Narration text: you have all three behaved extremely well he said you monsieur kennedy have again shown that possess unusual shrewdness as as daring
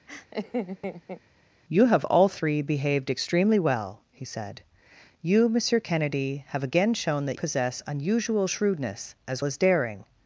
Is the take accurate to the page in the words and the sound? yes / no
no